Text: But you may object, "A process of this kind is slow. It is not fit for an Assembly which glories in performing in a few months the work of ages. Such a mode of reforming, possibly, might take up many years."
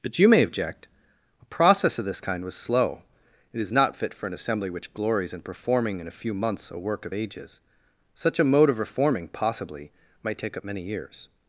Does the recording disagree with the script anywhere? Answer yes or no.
yes